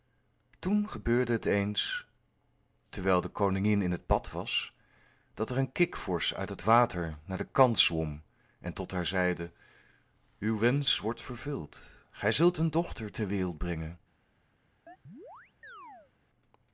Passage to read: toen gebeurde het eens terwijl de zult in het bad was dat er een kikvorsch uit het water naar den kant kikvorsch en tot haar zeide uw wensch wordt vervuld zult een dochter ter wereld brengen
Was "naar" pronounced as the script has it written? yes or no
yes